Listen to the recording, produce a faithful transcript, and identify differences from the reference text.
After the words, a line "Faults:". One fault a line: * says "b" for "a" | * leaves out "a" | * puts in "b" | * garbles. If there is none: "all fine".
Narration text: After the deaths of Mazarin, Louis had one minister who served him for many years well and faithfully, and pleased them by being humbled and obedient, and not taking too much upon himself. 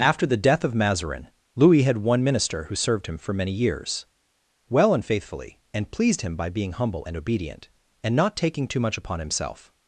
After the death of Mazarin, Louis had one minister who served him for many years well and faithfully, and pleased him by being humble and obedient, and not taking too much upon himself.
Faults:
* says "death" for "deaths"
* says "him" for "them"
* says "humble" for "humbled"